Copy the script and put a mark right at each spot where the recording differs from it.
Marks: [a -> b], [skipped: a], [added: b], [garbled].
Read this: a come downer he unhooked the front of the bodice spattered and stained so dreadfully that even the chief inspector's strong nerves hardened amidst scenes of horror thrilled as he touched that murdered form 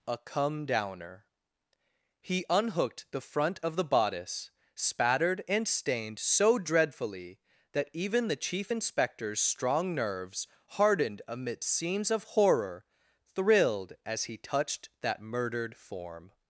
a come downer he unhooked the front of the bodice spattered and stained so dreadfully that even the chief inspector's strong nerves hardened amidst scenes of horror thrilled as he touched that murdered form